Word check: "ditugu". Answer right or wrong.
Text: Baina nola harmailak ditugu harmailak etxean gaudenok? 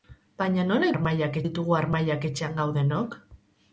right